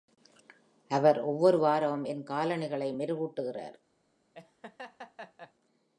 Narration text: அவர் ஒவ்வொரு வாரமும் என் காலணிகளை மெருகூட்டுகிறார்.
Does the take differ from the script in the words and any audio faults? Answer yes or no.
yes